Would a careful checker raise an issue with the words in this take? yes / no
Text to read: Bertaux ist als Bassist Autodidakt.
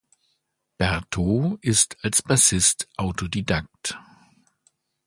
no